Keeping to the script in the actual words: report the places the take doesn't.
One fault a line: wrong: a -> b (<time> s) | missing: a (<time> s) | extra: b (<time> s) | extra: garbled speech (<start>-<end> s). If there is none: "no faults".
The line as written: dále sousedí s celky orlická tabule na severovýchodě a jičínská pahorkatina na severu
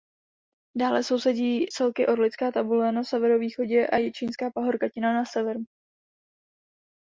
missing: s (1.6 s)